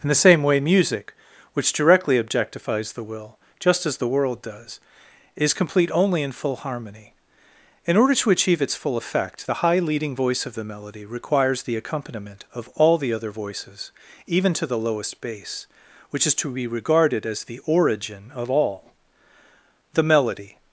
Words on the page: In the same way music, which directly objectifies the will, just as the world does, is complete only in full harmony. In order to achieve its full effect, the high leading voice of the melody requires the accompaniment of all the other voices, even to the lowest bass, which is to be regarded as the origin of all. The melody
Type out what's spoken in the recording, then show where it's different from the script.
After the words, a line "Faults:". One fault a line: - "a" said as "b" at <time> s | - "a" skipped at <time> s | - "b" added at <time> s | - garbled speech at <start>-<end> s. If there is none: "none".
In the same way music, which directly objectifies the will, just as the world does, is complete only in full harmony. In order to achieve its full effect, the high leading voice of the melody requires the accompaniment of all the other voices, even to the lowest bass, which is to be regarded as the origin of all. The melody
Faults:
none